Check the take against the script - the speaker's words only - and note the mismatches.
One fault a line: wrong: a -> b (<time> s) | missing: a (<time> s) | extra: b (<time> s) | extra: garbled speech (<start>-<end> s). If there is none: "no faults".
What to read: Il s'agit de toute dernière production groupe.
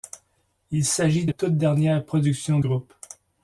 no faults